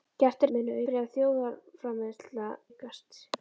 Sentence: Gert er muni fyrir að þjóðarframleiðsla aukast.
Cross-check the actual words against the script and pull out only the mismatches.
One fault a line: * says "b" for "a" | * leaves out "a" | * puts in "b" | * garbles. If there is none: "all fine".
all fine